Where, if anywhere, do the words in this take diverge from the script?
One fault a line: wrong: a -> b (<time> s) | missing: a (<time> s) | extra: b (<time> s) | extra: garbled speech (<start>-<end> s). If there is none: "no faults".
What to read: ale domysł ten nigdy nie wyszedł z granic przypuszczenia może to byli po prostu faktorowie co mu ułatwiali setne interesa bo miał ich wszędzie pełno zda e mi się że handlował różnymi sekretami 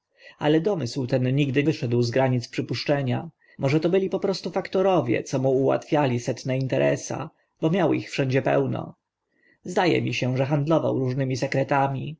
missing: nie (1.6 s)